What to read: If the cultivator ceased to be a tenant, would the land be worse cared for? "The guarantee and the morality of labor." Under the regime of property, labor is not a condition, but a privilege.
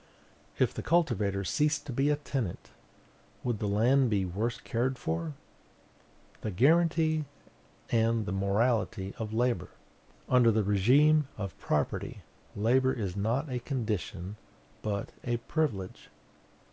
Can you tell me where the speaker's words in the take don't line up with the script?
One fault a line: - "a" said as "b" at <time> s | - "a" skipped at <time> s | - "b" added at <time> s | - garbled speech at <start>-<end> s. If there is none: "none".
none